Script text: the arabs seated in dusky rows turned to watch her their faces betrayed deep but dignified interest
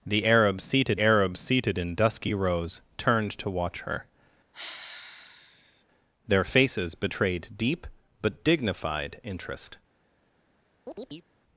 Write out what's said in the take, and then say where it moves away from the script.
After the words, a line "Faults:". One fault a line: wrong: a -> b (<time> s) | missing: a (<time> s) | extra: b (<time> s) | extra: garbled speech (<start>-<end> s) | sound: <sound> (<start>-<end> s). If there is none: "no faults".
the arabs seated arabs seated in dusky rows turned to watch her their faces betrayed deep but dignified interest
Faults:
extra: arabs seated (1.0 s)
sound: sigh (4.5-5.8 s)
sound: chirp (10.9-11.3 s)